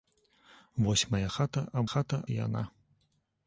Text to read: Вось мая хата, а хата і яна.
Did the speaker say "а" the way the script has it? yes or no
yes